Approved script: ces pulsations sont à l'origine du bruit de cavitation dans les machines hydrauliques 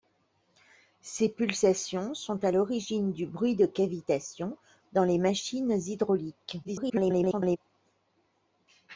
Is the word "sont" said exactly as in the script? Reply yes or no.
yes